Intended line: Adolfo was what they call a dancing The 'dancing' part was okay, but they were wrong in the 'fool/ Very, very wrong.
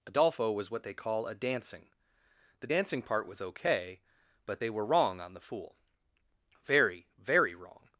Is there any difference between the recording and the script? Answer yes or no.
yes